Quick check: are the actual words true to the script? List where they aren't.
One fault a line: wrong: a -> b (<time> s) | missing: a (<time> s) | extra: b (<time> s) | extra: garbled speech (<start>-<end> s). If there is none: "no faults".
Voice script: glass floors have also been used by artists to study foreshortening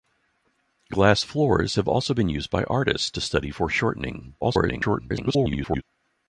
extra: garbled speech (4.4-5.8 s)